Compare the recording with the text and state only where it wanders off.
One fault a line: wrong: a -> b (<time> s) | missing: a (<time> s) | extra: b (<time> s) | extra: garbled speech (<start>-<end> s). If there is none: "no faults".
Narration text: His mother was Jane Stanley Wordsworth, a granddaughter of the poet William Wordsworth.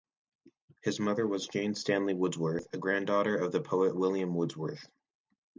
no faults